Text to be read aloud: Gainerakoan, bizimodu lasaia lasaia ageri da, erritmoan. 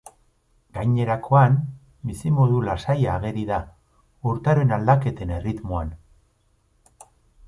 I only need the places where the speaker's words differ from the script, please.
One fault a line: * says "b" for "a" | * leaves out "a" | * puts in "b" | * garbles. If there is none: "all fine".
* leaves out "lasaia"
* puts in "urtaroen aldaketen"